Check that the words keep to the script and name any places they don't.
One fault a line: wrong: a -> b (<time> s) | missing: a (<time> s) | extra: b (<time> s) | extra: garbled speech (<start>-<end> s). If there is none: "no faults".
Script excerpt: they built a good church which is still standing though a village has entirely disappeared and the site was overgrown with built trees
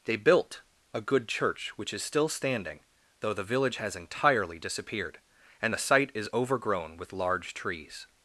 wrong: a -> the (3.3 s)
wrong: was -> is (6.1 s)
wrong: built -> large (7.1 s)